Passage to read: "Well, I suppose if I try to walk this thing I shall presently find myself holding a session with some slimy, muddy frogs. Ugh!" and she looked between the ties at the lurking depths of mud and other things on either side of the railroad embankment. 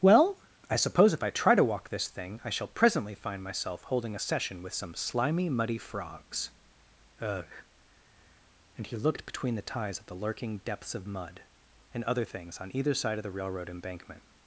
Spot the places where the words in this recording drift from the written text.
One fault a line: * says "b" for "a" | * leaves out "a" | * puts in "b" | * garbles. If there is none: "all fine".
* says "he" for "she"